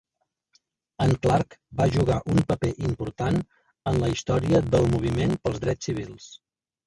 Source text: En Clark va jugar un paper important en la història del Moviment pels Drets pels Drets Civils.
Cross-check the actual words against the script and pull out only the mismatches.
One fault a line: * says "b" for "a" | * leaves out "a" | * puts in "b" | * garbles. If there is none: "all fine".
* leaves out "pels Drets"